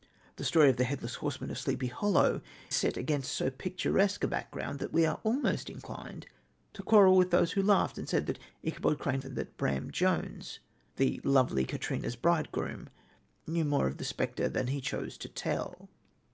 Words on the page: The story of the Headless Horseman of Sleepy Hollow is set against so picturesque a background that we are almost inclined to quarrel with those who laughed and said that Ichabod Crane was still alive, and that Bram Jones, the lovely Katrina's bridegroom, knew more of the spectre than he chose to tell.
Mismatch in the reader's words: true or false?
true